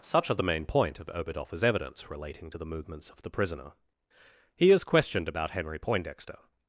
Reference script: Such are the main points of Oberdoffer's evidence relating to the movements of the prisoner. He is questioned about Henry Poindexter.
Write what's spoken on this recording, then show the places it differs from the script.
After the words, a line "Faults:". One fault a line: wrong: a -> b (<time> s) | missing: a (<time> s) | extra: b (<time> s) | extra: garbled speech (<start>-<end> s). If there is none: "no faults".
Such are the main point of Oberdoffer's evidence relating to the movements of the prisoner. He is questioned about Henry Poindexter.
Faults:
wrong: points -> point (0.7 s)